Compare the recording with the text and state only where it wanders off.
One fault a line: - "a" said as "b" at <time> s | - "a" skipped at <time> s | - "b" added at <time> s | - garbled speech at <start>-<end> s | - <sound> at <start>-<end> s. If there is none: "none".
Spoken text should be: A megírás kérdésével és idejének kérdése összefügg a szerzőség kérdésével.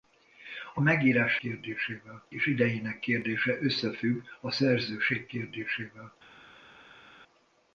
none